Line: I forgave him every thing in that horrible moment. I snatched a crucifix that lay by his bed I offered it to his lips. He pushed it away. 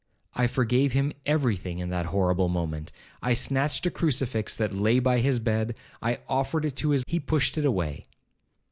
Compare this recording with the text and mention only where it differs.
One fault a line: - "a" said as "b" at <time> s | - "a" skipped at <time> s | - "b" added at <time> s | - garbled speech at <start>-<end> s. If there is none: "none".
- "lips" skipped at 7.0 s